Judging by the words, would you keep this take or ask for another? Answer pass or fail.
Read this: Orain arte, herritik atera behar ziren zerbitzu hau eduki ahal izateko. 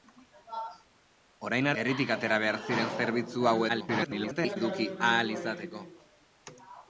fail